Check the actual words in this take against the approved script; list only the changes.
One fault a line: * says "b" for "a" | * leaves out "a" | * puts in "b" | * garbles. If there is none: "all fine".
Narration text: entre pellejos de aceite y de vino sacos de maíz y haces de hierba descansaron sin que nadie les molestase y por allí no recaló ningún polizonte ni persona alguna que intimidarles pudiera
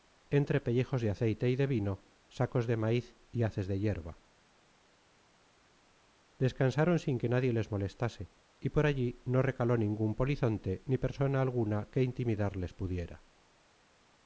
all fine